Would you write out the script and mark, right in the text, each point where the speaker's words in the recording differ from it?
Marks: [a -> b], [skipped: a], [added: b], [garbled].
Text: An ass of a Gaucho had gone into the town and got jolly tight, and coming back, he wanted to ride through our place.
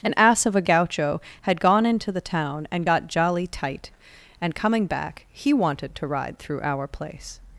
An ass of a Gaucho had gone into the town and got jolly tight, and coming back, he wanted to ride through our place.